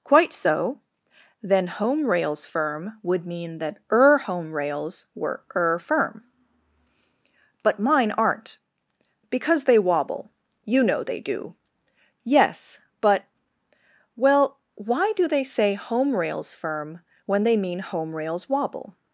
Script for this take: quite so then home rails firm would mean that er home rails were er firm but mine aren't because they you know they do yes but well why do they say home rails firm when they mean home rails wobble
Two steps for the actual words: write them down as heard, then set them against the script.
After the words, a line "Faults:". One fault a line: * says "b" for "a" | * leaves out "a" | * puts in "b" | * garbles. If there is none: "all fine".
quite so then home rails firm would mean that er home rails were er firm but mine aren't because they wobble you know they do yes but well why do they say home rails firm when they mean home rails wobble
Faults:
* puts in "wobble"